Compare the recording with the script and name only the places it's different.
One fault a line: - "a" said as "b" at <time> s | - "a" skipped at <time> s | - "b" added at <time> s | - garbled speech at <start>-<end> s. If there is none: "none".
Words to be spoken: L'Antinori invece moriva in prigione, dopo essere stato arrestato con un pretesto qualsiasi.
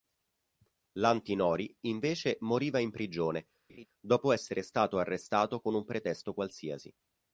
none